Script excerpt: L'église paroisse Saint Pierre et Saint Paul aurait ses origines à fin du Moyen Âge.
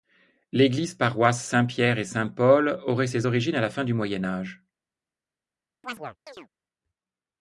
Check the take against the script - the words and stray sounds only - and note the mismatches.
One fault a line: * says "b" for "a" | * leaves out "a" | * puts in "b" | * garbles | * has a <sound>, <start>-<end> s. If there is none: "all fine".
* puts in "la"
* has a chirp, 5.8-6.5 s